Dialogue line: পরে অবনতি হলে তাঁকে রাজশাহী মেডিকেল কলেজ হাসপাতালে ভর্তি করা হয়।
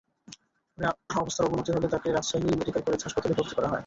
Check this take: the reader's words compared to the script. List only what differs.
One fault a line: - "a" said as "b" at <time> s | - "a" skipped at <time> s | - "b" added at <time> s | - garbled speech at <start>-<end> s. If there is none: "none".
- "অবস্থার" added at 1.2 s